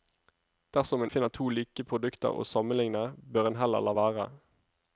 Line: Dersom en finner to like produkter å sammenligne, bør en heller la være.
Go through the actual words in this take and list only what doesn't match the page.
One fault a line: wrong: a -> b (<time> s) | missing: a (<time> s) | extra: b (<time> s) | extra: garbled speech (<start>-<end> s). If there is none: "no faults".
no faults